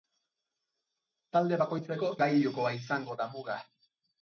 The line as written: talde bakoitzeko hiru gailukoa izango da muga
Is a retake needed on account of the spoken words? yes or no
yes